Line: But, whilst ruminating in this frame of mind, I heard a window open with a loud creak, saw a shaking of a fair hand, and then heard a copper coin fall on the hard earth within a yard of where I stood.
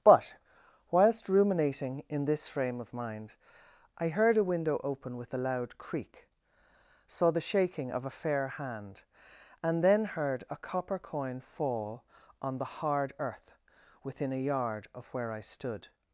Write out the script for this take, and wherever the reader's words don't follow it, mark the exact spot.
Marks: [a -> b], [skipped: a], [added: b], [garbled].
But, whilst ruminating in this frame of mind, I heard a window open with a loud creak, saw [a -> the] shaking of a fair hand, and then heard a copper coin fall on the hard earth within a yard of where I stood.